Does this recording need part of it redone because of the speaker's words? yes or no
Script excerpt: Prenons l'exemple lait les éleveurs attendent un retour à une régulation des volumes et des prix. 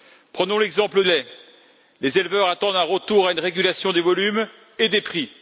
no